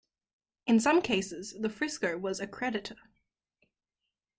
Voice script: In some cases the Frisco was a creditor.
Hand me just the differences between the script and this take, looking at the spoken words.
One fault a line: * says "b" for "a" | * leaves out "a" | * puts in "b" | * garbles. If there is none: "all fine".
all fine